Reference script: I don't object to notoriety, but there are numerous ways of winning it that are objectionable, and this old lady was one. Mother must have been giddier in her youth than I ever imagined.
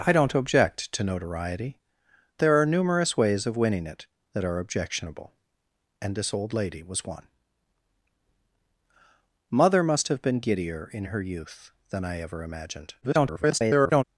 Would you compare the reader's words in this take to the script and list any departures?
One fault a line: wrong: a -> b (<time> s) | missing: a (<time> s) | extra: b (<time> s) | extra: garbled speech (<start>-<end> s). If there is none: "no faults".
missing: but (1.8 s)
extra: garbled speech (13.0-14.0 s)